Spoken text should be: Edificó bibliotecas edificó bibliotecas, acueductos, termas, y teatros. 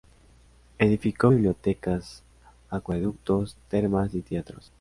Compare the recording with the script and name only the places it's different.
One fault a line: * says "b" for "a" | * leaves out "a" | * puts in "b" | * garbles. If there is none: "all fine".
* leaves out "edificó bibliotecas"